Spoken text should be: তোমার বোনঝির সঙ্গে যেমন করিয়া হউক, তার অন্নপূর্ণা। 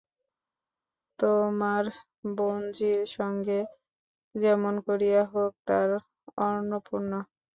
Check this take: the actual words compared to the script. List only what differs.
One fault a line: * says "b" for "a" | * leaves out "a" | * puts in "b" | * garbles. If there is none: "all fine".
all fine